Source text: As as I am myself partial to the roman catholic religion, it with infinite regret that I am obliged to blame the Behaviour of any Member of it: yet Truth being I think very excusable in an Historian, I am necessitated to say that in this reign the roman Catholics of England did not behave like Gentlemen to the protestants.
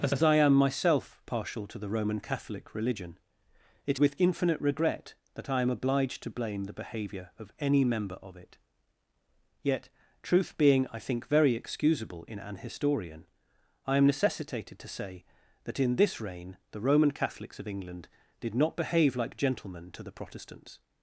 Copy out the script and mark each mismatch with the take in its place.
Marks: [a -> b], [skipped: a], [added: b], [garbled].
As as I am myself partial to the roman catholic religion, it with infinite regret that I am obliged to blame the Behaviour of any Member of it: yet Truth being I think very excusable in an Historian, I am necessitated to say that in this reign the roman Catholics of England did not behave like Gentlemen to the protestants.